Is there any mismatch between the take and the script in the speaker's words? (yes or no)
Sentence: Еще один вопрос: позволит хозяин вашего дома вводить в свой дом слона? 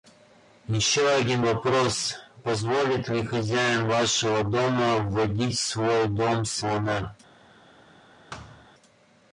yes